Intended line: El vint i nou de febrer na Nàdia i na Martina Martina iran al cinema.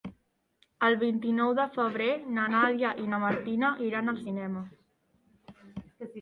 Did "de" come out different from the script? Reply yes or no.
no